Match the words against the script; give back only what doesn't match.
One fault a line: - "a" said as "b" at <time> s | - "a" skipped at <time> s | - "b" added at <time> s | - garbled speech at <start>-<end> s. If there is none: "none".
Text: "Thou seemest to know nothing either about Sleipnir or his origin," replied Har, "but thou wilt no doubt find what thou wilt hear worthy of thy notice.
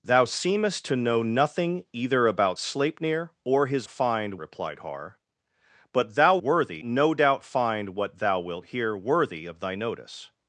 - "origin" said as "find" at 3.9 s
- "wilt" said as "worthy" at 6.4 s